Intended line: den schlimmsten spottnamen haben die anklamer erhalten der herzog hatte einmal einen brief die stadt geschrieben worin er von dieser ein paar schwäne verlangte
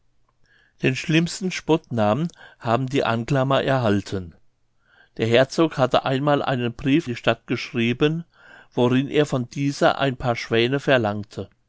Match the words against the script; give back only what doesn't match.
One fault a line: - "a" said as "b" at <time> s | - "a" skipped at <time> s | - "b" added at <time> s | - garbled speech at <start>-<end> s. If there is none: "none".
none